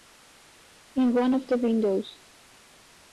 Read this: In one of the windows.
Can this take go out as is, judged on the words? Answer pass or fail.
pass